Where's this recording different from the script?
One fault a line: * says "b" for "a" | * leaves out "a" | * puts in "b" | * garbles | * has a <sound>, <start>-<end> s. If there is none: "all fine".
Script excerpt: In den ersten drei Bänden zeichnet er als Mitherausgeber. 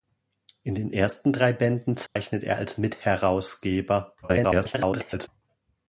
* has a dropout, 2.1-2.2 s
* garbles